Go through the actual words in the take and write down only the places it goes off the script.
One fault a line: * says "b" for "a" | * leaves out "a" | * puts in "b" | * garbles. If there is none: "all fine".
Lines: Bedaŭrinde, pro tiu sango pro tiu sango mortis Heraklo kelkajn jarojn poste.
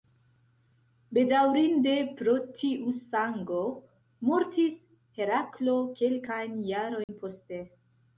* leaves out "pro tiu sango"